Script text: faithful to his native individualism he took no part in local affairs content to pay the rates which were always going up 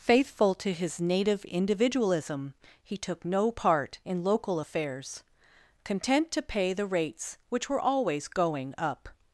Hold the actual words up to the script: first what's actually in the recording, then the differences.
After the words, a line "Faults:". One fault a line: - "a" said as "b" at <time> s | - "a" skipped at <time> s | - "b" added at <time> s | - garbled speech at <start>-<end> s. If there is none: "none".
faithful to his native individualism he took no part in local affairs content to pay the rates which were always going up
Faults:
none